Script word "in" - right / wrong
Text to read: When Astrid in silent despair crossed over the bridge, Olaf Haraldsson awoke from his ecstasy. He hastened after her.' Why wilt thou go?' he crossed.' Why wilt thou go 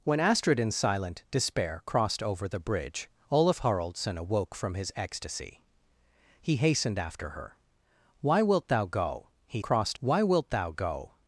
right